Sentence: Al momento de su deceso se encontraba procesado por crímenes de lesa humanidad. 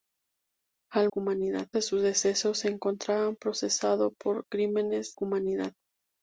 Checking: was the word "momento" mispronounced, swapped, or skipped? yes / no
yes